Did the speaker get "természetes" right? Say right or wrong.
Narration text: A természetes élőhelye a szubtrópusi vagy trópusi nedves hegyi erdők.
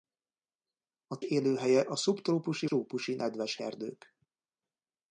wrong